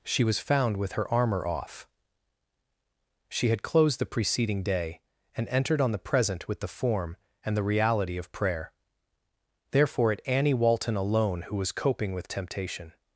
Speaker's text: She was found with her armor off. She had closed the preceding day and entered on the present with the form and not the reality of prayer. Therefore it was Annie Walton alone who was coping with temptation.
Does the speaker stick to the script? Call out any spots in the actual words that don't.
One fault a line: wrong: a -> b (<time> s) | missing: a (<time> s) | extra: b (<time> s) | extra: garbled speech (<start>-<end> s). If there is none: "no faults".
missing: not (7.6 s)
missing: was (10.2 s)